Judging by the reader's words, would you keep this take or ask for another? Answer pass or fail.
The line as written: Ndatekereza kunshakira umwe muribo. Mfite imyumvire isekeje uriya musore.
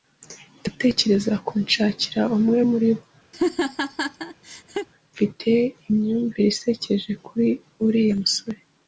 fail